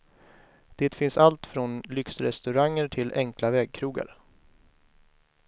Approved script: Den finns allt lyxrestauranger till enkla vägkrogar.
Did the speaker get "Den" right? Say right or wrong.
wrong